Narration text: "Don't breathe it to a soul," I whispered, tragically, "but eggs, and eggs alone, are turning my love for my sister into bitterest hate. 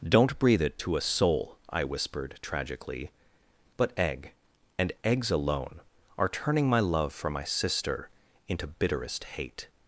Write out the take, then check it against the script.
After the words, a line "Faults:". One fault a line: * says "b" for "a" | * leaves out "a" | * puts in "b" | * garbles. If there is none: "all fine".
"Don't breathe it to a soul," I whispered, tragically, "but egg, and eggs alone, are turning my love for my sister into bitterest hate.
Faults:
* says "egg" for "eggs"